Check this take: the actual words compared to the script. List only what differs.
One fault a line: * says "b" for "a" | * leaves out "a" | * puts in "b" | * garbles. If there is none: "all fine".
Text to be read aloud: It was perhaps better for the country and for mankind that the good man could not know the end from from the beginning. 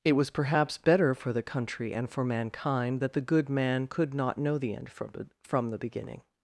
all fine